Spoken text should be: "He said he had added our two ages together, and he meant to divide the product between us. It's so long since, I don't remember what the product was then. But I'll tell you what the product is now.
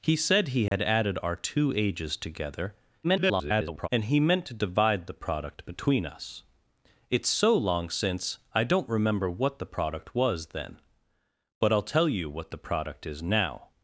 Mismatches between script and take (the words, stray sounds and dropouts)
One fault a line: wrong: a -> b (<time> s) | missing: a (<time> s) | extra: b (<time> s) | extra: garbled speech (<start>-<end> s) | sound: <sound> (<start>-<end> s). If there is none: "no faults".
sound: dropout (0.7-0.7 s)
extra: garbled speech (3.0-3.9 s)